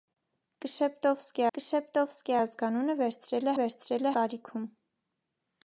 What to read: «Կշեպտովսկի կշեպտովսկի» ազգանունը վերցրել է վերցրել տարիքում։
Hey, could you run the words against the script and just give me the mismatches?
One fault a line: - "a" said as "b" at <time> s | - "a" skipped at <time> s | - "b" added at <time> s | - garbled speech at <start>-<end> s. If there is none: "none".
none